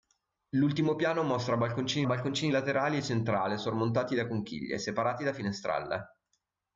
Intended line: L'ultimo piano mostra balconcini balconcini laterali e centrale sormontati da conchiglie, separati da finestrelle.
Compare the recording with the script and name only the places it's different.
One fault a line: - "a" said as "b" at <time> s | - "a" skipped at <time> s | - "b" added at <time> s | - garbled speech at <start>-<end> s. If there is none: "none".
none